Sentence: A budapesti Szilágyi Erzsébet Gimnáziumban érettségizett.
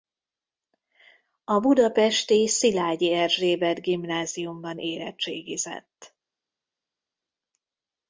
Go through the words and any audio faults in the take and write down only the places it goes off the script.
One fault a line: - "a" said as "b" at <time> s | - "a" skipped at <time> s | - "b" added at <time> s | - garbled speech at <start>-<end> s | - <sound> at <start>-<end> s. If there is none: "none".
none